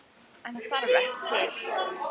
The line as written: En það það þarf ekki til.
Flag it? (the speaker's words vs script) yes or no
yes